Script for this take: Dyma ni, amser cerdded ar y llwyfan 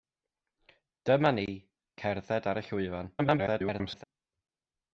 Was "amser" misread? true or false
true